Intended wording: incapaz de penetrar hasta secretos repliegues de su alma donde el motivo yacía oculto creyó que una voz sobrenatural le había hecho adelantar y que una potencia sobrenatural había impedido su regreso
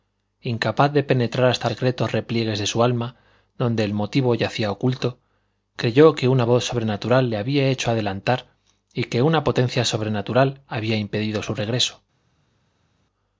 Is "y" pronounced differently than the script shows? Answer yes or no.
no